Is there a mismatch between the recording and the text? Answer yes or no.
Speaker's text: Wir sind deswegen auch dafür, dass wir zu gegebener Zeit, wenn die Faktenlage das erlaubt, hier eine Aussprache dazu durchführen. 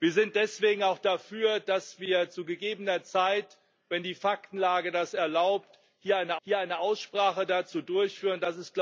yes